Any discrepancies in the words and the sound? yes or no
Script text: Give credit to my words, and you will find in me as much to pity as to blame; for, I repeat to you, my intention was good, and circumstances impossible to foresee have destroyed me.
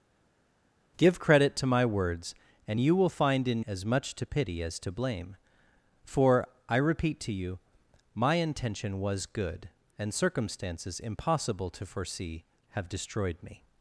yes